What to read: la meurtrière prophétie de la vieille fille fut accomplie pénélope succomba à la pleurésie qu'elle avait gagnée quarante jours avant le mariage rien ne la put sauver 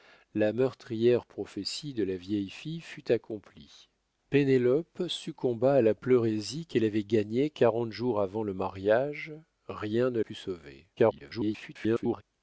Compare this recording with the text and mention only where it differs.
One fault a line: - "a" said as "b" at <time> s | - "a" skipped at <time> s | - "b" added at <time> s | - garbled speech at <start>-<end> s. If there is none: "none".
- "la" skipped at 10.2 s
- garbled speech at 11.0-12.2 s